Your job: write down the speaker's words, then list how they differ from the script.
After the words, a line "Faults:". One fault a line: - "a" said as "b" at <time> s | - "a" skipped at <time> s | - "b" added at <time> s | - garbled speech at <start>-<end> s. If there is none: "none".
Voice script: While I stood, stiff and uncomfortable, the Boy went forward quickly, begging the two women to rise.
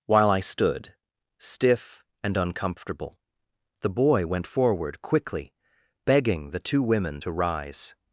While I stood, stiff and uncomfortable, the Boy went forward quickly, begging the two women to rise.
Faults:
none